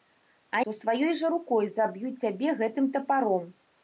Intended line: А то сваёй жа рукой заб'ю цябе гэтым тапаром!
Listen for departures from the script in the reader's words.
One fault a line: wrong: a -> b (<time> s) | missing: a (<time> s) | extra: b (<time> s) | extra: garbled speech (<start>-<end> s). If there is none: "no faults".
no faults